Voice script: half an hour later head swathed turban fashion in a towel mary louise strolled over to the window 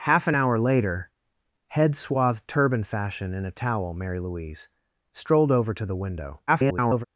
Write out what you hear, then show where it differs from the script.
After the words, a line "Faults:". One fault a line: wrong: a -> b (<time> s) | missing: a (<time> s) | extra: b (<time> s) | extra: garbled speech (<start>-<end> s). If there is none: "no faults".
half an hour later head swathed turban fashion in a towel mary louise strolled over to the window [garbled]
Faults:
extra: garbled speech (6.5-7.0 s)